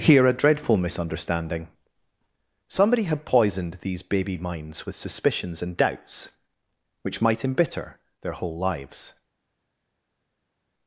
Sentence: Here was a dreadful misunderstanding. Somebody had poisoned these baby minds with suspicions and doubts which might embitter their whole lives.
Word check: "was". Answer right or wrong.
wrong